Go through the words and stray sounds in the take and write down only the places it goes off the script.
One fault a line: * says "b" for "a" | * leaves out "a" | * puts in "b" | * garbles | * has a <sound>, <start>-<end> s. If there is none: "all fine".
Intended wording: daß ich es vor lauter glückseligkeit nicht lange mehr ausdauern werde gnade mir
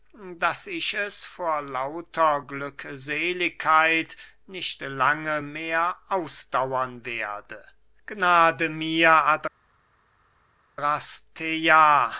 all fine